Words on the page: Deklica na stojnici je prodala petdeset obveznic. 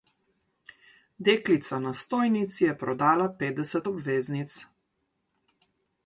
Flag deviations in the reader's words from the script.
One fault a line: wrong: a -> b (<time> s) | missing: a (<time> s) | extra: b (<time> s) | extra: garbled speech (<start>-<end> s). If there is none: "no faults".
no faults